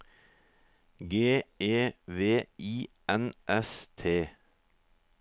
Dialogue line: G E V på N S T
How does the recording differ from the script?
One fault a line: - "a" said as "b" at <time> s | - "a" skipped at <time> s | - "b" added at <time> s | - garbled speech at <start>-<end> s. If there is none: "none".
- "på" said as "I" at 2.6 s